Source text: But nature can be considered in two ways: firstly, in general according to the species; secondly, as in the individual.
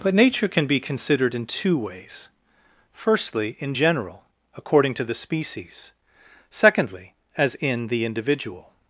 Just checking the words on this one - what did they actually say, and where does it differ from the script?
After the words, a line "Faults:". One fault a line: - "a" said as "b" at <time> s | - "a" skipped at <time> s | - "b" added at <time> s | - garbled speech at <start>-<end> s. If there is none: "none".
But nature can be considered in two ways: firstly, in general according to the species; secondly, as in the individual.
Faults:
none